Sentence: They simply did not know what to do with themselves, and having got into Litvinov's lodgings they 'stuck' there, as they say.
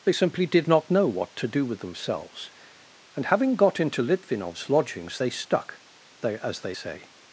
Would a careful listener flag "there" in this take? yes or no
yes